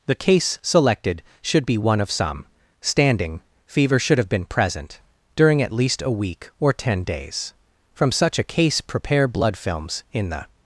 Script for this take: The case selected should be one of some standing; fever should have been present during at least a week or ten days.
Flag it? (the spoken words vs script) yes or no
yes